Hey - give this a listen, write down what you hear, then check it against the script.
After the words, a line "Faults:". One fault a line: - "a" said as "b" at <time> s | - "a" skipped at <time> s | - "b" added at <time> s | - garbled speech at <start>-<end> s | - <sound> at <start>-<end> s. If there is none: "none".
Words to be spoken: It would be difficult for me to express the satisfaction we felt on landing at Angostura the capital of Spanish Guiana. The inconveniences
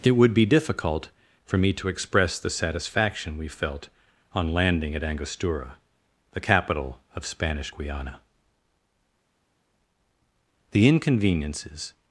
It would be difficult for me to express the satisfaction we felt on landing at Angostura the capital of Spanish Guiana. The inconveniences
Faults:
none